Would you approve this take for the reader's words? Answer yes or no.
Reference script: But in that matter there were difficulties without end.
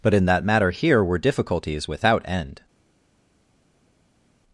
no